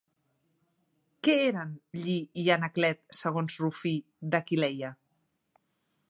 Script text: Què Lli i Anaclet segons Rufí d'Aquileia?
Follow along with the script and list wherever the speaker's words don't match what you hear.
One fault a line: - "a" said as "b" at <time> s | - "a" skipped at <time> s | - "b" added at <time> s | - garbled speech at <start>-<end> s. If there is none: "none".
- "eren" added at 1.5 s